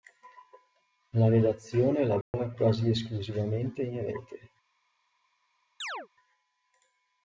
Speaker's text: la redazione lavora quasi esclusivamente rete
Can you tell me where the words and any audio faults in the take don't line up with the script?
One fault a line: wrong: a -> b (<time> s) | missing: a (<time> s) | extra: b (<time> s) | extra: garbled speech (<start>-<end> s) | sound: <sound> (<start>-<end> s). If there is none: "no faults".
sound: dropout (2.2-2.3 s)
extra: in (3.8 s)
sound: chirp (5.8-6.1 s)